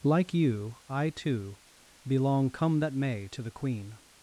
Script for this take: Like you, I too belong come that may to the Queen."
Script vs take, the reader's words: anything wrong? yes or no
no